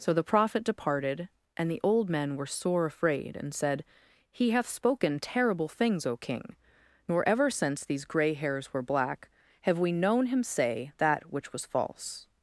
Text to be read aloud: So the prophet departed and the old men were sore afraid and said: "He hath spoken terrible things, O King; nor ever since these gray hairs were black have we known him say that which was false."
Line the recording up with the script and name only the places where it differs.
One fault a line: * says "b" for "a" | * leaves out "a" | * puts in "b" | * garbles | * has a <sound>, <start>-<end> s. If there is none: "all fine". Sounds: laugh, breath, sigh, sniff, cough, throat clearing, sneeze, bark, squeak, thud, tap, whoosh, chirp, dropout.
all fine